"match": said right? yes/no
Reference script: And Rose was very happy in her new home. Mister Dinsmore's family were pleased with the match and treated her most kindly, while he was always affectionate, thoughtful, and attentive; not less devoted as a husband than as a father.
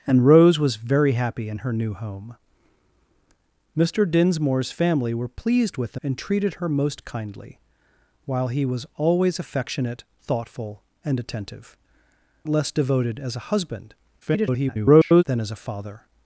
no